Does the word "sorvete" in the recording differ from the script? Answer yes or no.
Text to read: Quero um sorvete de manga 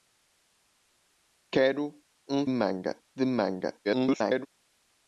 yes